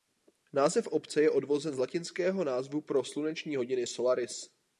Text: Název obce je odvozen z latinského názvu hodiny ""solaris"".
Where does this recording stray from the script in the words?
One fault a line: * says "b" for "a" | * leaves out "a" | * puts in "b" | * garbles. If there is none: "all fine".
* puts in "pro sluneční"